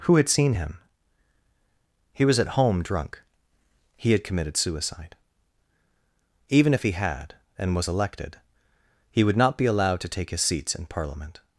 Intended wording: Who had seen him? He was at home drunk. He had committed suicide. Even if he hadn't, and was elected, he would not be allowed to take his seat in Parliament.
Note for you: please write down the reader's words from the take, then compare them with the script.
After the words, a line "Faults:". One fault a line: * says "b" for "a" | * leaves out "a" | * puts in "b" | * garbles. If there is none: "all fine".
Who had seen him? He was at home drunk. He had committed suicide. Even if he had, and was elected, he would not be allowed to take his seats in Parliament.
Faults:
* says "had" for "hadn't"
* says "seats" for "seat"